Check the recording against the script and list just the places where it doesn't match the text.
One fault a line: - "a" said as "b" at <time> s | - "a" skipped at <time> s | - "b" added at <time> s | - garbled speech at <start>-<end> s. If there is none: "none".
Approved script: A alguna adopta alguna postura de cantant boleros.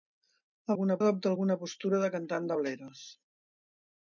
none